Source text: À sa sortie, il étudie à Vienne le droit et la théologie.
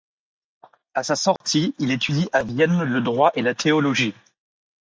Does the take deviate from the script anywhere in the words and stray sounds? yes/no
yes